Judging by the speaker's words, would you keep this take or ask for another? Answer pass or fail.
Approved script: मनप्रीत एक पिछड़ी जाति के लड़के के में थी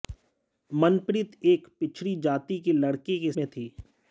pass